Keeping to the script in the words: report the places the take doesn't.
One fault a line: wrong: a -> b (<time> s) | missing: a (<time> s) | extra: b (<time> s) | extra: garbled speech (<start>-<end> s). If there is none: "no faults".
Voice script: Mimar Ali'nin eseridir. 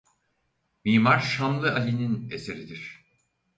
extra: Şamlı (1.2 s)